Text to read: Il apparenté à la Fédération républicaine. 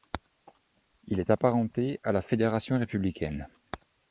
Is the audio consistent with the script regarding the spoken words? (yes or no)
no